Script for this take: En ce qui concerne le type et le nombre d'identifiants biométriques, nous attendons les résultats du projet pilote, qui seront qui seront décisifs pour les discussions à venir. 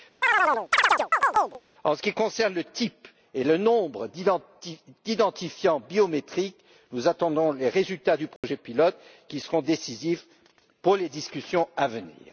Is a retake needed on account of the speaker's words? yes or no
yes